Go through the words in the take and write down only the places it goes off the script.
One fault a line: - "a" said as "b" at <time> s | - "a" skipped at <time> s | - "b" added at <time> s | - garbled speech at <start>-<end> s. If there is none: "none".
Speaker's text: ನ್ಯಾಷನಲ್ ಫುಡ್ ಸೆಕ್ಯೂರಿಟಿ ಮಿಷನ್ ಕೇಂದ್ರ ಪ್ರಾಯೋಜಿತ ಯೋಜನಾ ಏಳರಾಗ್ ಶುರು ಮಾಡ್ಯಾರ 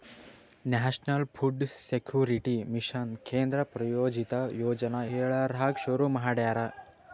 none